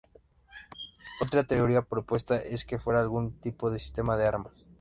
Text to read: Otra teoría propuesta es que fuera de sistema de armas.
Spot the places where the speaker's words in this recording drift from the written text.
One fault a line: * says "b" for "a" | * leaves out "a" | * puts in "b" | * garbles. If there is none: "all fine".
* puts in "algún tipo"